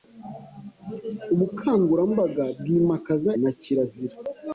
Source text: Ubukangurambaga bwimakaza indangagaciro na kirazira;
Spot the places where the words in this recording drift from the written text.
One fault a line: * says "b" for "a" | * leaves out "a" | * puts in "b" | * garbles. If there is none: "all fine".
* leaves out "indangagaciro"